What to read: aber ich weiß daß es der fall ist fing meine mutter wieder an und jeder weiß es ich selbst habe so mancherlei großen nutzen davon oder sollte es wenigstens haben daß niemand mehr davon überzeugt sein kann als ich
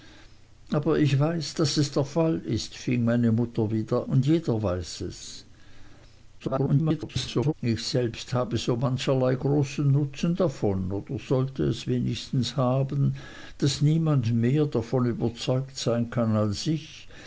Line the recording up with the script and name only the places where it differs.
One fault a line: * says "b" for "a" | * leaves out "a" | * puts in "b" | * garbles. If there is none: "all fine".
* leaves out "an"
* garbles